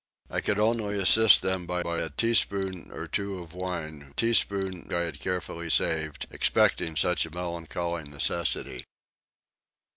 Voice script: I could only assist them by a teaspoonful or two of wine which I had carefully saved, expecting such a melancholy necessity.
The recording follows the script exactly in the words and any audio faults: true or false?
false